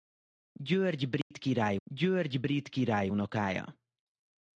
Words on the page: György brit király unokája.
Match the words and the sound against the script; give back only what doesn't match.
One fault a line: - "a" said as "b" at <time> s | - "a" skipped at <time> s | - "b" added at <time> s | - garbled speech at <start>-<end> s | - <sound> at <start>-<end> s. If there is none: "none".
- dropout at 1.2-1.3 s
- "györgy brit király" added at 1.8 s